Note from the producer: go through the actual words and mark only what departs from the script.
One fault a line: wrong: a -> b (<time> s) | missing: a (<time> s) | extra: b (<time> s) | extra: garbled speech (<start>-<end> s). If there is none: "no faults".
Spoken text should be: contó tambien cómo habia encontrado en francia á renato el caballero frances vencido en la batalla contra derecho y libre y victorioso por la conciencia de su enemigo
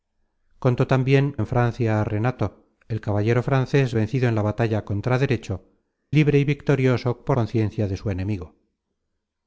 missing: cómo habia encontrado (1.4 s)
missing: y (5.5 s)
missing: la (7.4 s)